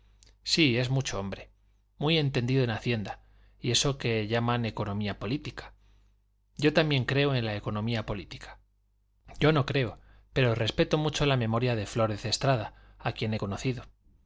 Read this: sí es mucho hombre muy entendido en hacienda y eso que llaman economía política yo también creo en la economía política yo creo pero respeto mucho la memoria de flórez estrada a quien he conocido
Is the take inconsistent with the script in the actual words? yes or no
yes